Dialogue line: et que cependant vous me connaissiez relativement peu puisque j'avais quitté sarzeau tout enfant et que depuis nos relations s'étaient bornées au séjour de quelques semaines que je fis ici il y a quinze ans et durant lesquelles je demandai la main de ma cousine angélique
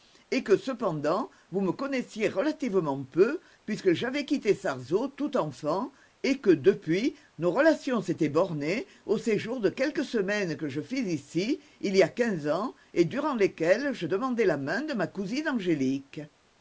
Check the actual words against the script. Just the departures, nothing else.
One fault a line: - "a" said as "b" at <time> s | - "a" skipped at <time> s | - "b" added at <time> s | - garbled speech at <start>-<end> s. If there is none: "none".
none